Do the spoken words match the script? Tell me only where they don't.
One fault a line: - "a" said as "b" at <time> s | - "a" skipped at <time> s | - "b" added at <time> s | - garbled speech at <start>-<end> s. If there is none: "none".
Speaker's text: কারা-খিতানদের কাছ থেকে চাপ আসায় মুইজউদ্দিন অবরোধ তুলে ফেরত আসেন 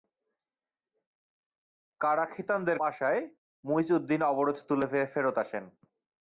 - "কাছ থেকে চাপ" skipped at 2.8 s